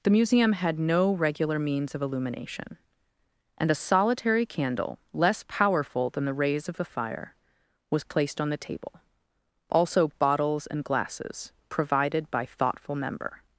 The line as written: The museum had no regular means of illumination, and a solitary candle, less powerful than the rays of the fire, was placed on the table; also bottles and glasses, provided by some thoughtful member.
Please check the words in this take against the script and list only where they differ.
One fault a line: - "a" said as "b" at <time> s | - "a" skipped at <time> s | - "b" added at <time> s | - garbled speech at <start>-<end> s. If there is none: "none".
- "some" skipped at 12.5 s